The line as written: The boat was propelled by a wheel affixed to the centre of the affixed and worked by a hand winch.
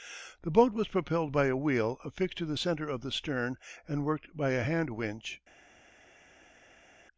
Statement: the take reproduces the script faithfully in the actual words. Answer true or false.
false